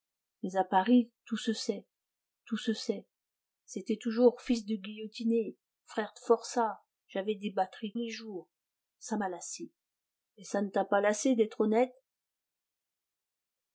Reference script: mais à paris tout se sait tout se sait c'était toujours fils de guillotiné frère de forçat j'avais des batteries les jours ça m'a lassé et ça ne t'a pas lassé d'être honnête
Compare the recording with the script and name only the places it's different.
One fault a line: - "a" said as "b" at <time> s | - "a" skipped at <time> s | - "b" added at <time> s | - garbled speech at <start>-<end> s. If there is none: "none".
none